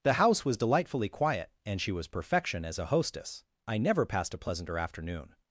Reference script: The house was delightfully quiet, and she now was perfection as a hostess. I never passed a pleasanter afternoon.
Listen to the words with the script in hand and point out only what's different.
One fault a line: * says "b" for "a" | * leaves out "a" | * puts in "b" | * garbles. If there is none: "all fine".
* leaves out "now"